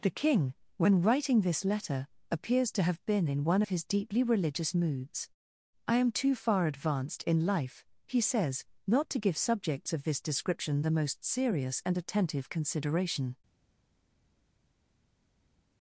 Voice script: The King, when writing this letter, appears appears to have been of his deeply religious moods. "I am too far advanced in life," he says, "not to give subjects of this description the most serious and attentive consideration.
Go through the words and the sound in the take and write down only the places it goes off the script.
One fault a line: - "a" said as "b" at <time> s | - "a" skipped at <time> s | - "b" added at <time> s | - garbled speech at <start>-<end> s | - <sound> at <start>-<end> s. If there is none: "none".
- "appears" skipped at 2.7 s
- "in one" added at 3.3 s